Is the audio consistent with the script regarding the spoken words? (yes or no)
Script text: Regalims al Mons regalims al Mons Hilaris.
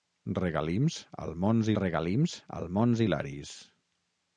yes